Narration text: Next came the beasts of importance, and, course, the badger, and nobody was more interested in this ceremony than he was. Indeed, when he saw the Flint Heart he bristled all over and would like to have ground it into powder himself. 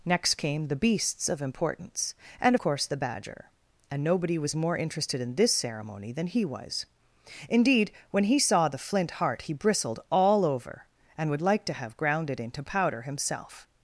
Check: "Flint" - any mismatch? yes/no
no